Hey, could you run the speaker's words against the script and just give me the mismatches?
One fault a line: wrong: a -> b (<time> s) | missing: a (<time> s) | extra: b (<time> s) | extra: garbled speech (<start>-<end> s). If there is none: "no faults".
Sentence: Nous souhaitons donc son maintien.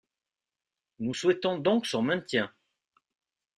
no faults